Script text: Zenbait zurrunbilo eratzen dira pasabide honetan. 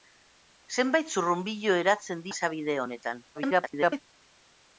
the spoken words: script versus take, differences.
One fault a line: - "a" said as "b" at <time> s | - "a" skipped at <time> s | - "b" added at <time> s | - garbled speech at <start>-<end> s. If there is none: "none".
- "dira" skipped at 2.2 s
- garbled speech at 3.3-4.0 s